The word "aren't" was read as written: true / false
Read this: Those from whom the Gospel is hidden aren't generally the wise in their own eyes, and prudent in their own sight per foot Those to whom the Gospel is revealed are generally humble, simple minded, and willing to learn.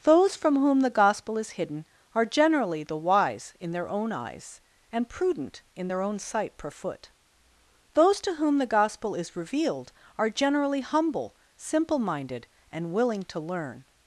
false